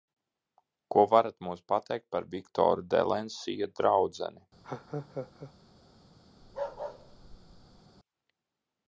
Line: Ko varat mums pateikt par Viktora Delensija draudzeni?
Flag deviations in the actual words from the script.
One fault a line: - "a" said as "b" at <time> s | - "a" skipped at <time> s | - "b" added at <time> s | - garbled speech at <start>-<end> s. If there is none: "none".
none